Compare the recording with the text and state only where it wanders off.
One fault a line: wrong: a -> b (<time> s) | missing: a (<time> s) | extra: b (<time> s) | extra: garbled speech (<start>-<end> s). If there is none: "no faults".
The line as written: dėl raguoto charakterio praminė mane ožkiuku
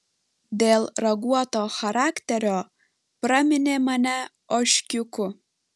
no faults